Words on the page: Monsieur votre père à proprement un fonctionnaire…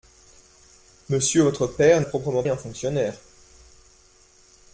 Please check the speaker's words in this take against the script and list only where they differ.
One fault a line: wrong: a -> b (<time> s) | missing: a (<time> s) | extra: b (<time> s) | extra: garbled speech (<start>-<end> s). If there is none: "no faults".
no faults